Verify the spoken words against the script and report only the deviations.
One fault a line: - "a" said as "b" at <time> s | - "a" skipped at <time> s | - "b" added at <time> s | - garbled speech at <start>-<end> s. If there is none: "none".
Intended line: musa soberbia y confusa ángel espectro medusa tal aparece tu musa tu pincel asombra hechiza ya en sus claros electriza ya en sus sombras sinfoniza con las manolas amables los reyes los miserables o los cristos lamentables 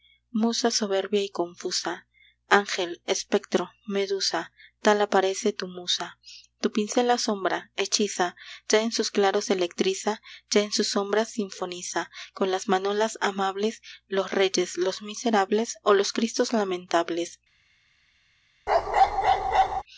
none